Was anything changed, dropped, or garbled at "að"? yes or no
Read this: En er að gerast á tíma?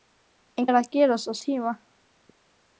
no